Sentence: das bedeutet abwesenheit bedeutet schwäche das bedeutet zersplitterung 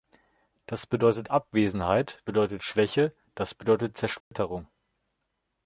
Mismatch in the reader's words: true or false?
false